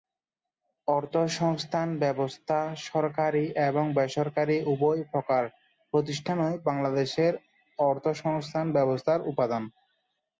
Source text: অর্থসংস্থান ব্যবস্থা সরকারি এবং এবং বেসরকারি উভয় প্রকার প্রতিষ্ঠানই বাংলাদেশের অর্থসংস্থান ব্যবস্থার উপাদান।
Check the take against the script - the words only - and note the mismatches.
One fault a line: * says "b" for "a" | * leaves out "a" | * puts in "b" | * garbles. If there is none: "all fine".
* leaves out "এবং"